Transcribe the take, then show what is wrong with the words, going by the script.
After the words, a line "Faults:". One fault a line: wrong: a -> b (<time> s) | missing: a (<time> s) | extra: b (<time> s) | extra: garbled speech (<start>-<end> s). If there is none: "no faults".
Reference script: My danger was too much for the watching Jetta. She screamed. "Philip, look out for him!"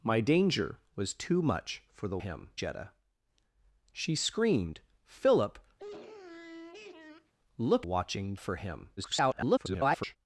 My danger was too much for the him Jetta. She screamed. "Philip, look watching for him!" [garbled]
Faults:
wrong: watching -> him (2.2 s)
wrong: out -> watching (7.8 s)
extra: garbled speech (9.0-10.2 s)